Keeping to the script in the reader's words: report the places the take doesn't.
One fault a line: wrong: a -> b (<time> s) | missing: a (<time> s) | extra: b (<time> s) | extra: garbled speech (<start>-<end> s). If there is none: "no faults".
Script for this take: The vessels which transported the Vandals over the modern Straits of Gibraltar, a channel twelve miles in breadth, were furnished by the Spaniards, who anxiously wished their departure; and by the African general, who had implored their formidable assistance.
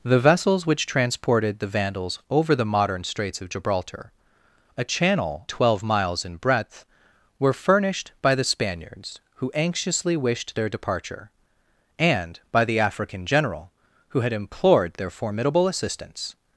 no faults